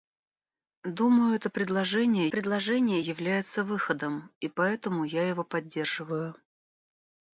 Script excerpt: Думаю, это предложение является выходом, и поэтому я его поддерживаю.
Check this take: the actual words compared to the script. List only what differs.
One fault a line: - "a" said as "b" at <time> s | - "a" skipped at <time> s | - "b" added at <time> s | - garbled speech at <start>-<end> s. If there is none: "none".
- "предложение" added at 2.3 s